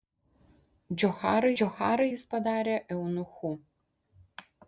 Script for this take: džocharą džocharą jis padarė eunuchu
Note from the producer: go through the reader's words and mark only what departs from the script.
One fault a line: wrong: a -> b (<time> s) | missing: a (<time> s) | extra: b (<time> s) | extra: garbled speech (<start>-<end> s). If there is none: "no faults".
no faults